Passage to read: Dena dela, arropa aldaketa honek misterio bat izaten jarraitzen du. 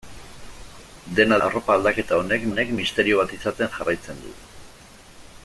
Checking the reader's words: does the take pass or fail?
fail